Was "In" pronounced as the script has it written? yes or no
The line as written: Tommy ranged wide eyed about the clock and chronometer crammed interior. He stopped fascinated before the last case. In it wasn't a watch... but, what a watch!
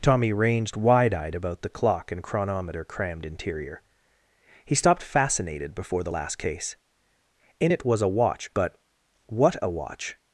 yes